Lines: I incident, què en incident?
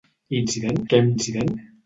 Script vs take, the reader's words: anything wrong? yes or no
no